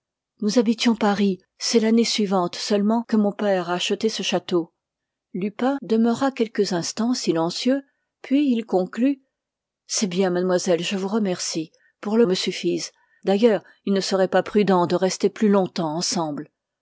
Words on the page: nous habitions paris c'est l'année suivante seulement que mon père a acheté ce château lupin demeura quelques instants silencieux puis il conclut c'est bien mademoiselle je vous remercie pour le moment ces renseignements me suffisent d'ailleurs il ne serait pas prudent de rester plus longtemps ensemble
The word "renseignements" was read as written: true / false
false